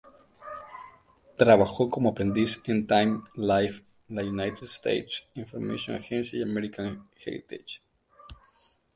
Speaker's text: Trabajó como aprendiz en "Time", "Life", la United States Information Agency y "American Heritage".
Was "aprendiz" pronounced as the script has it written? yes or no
yes